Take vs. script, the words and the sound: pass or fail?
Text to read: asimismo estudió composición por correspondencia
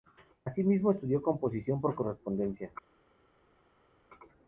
pass